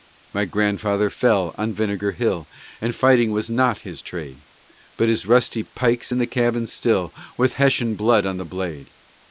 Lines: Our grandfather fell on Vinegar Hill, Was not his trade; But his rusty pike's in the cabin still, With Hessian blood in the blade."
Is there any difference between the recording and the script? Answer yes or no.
yes